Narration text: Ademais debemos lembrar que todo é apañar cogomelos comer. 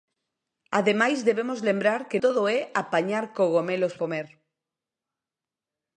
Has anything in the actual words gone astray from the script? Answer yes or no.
no